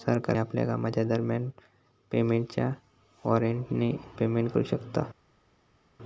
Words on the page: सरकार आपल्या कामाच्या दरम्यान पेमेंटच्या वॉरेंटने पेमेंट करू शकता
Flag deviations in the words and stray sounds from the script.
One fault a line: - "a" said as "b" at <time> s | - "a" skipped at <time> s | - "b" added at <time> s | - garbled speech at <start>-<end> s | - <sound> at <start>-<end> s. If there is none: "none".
none